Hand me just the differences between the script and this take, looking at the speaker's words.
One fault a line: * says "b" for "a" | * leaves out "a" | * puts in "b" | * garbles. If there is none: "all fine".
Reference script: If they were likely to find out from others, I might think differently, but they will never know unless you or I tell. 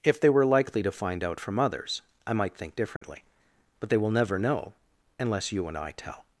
* says "and" for "or"